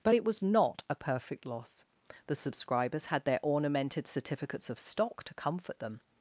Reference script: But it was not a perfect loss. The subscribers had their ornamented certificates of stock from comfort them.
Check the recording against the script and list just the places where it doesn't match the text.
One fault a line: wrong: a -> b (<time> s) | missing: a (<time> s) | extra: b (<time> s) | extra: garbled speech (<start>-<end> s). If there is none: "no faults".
wrong: from -> to (5.2 s)